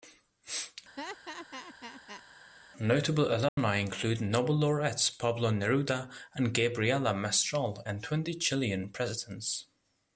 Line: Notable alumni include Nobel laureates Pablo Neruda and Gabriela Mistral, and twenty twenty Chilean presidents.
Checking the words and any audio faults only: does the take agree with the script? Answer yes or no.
no